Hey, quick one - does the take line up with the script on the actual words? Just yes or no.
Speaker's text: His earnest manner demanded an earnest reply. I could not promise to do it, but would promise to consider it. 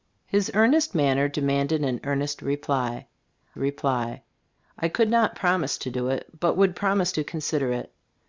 no